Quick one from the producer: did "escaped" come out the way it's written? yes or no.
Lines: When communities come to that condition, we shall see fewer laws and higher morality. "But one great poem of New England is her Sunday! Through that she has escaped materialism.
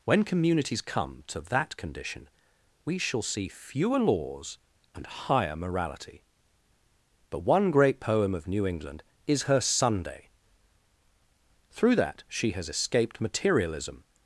yes